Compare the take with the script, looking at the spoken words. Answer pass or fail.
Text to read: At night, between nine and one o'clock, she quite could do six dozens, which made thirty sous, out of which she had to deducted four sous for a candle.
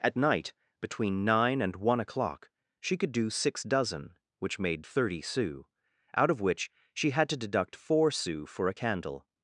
fail